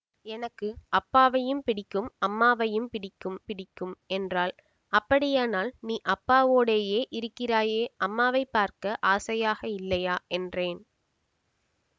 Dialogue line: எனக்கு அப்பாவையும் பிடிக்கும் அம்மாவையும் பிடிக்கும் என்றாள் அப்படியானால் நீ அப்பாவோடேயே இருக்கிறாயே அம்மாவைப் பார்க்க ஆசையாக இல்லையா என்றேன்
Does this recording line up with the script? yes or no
no